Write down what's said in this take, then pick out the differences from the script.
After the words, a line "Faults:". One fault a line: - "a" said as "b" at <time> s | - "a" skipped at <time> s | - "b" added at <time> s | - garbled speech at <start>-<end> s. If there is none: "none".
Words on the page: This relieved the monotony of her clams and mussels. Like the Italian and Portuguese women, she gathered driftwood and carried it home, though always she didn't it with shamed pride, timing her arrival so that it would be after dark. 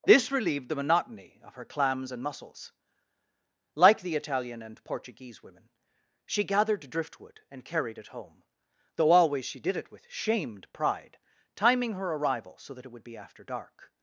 This relieved the monotony of her clams and mussels. Like the Italian and Portuguese women, she gathered driftwood and carried it home, though always she did it with shamed pride, timing her arrival so that it would be after dark.
Faults:
- "didn't" said as "did" at 9.6 s